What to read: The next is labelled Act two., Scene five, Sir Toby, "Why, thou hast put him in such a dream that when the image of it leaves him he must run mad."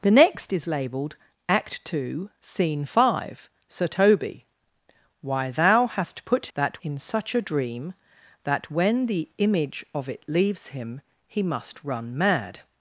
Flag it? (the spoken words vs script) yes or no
yes